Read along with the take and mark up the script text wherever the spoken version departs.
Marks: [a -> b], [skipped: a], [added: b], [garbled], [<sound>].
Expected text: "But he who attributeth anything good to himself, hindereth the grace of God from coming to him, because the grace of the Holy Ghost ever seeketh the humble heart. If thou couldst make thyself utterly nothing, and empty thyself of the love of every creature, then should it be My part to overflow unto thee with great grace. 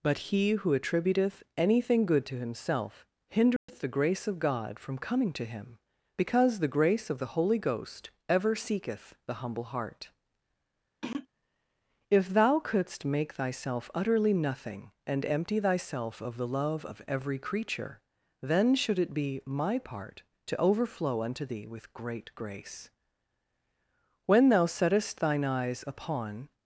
"But he who attributeth anything good to himself, hindereth [dropout] the grace of God from coming to him, because the grace of the Holy Ghost ever seeketh the humble heart. [throat clearing] If thou couldst make thyself utterly nothing, and empty thyself of the love of every creature, then should it be My part to overflow unto thee with great grace. [added: When thou settest thine eyes upon]